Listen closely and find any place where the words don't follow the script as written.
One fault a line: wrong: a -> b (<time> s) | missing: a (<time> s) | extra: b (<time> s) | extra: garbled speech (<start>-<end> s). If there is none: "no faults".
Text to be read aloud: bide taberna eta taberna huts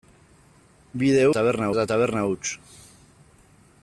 no faults